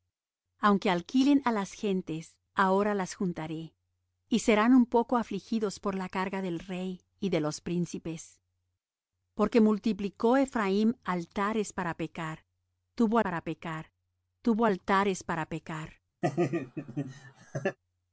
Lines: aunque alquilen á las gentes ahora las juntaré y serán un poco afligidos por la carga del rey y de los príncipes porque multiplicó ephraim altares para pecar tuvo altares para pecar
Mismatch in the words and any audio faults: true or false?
true